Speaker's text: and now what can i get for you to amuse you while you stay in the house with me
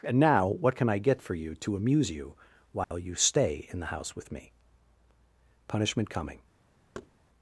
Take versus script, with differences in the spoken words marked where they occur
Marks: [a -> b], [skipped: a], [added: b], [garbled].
and now what can i get for you to amuse you while you stay in the house with me [added: punishment coming]